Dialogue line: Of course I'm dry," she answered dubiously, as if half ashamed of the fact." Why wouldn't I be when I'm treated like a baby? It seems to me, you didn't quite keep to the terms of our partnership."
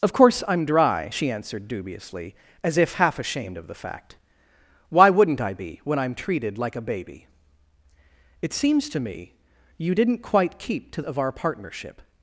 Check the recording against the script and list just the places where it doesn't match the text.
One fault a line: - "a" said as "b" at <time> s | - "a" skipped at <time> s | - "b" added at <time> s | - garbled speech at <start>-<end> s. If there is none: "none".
- "the terms" skipped at 11.0 s